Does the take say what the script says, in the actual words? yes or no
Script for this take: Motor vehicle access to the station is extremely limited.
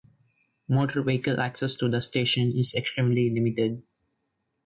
yes